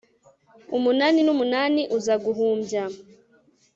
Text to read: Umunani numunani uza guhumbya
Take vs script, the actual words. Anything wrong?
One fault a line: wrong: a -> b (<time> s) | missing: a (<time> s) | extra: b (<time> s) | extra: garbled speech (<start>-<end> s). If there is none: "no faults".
no faults